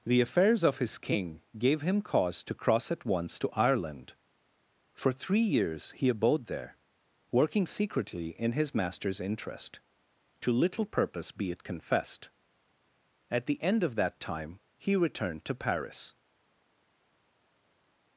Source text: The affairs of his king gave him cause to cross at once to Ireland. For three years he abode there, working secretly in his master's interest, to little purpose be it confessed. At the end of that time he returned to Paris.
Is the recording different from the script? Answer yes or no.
no